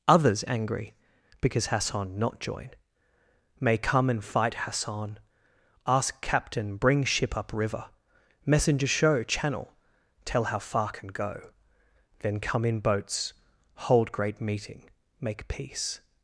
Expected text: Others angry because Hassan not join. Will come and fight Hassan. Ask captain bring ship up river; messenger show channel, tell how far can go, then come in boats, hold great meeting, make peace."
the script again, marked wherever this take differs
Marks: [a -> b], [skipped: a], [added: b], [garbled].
Others angry because Hassan not join. [Will -> May] come and fight Hassan. Ask captain bring ship up river; messenger show channel, tell how far can go, then come in boats, hold great meeting, make peace."